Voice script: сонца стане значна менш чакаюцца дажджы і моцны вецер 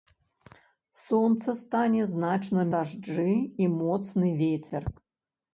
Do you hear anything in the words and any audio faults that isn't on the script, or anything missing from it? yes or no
yes